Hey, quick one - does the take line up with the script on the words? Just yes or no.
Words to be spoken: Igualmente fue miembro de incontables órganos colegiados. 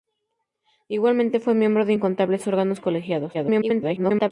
no